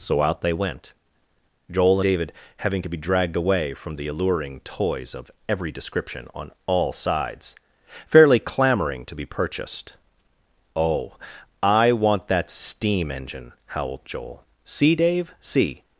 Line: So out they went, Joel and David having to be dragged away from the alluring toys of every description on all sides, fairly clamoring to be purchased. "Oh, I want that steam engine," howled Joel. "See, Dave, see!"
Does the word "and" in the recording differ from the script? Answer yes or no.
yes